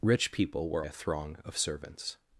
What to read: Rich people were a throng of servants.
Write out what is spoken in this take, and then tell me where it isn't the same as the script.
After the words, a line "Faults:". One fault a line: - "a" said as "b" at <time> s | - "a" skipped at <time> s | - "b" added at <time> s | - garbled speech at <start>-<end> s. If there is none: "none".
Rich people were a throng of servants.
Faults:
none